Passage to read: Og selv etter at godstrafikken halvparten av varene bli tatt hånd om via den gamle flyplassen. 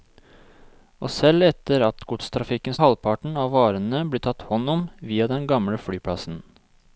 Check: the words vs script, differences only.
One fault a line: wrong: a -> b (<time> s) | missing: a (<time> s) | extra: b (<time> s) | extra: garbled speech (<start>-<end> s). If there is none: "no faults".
no faults